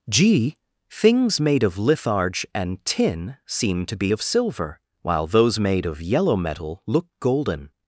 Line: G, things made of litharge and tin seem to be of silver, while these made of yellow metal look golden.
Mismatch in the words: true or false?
true